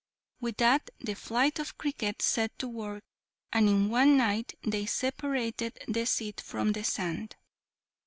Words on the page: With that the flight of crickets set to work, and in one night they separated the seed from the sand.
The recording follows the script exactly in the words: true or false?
true